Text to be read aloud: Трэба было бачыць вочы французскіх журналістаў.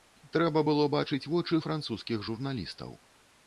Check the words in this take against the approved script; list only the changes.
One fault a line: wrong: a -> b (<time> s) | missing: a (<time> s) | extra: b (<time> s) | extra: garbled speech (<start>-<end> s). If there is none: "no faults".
no faults